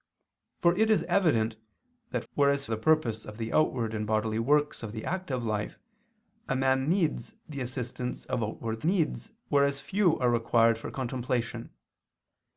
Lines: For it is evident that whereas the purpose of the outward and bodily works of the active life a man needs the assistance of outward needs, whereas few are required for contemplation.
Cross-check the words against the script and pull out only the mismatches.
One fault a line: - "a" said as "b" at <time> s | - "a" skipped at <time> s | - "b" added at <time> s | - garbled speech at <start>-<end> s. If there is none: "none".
none